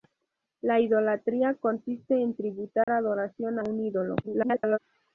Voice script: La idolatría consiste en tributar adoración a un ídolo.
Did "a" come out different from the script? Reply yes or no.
yes